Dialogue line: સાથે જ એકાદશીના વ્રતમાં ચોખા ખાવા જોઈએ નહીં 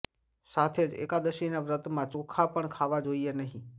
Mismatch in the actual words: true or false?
true